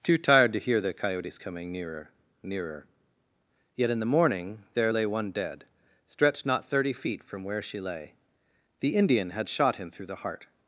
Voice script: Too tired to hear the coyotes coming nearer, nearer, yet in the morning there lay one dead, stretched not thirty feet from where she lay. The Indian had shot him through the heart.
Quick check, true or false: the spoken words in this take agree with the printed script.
true